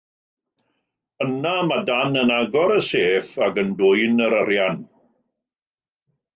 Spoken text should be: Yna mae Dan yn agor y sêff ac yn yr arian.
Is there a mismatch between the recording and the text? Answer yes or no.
yes